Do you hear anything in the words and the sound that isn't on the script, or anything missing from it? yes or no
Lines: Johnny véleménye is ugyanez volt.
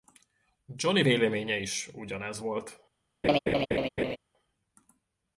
yes